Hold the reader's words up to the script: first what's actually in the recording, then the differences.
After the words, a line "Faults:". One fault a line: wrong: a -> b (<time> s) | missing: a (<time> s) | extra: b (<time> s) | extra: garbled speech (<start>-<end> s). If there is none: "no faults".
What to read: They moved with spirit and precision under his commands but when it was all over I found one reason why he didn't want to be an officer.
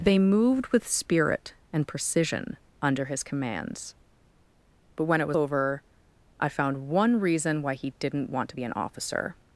They moved with spirit and precision under his commands but when it was over I found one reason why he didn't want to be an officer.
Faults:
missing: all (5.4 s)